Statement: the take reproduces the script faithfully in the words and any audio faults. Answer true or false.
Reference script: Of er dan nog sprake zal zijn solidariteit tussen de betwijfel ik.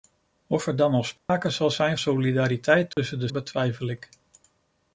false